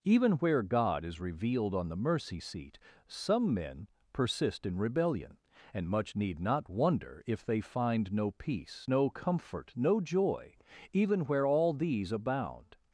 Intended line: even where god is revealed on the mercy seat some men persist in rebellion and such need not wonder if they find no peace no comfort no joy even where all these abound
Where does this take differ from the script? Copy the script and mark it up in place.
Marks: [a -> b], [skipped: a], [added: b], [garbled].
even where god is revealed on the mercy seat some men persist in rebellion and [such -> much] need not wonder if they find no peace no comfort no joy even where all these abound